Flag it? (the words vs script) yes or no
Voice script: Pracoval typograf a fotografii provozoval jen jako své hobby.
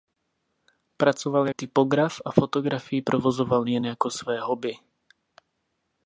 no